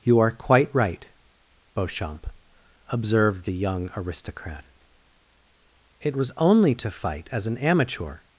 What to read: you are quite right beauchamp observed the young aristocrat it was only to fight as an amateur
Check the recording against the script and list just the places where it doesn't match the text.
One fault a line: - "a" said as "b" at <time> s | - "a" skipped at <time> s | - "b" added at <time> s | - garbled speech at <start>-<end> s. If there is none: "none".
none